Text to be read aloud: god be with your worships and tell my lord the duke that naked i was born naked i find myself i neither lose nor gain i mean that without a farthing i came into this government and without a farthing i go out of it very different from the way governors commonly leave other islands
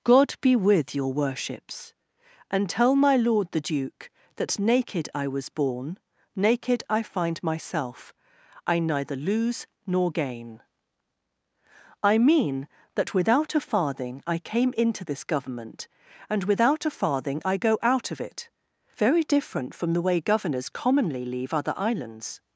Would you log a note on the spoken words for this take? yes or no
no